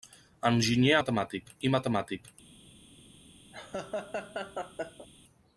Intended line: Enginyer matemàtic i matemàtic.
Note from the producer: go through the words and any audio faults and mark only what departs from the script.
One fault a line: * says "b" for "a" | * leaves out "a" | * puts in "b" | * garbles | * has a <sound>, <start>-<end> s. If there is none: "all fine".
* has a laugh, 3.5-5.1 s